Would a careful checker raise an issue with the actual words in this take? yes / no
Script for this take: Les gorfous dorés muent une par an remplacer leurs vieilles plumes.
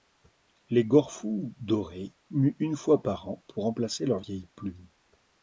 yes